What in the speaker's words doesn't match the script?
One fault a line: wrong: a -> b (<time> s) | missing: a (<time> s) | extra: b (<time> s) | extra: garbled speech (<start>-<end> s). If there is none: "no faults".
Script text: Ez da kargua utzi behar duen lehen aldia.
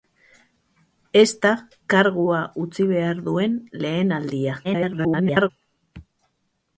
extra: garbled speech (4.6-5.5 s)